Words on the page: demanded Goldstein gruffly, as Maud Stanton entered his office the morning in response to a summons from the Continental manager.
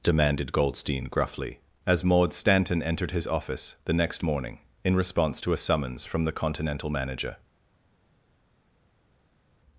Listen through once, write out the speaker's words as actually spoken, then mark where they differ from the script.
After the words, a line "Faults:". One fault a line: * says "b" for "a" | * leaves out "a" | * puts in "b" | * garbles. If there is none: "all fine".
demanded Goldstein gruffly, as Maud Stanton entered his office the next morning in response to a summons from the Continental manager.
Faults:
* puts in "next"